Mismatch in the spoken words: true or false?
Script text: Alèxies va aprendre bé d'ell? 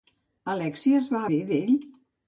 true